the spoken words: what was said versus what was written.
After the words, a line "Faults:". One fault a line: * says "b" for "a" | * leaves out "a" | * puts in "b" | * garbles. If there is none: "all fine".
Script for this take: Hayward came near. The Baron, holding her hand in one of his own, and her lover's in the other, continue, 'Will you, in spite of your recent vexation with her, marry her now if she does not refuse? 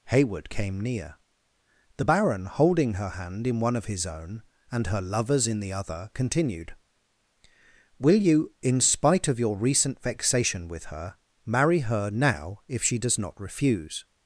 Hayward came near. The Baron, holding her hand in one of his own, and her lover's in the other, continued, 'Will you, in spite of your recent vexation with her, marry her now if she does not refuse?
Faults:
* says "continued" for "continue"